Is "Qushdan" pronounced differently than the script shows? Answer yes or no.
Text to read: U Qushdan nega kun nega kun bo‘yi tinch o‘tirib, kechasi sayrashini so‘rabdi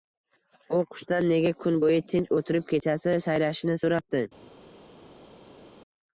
no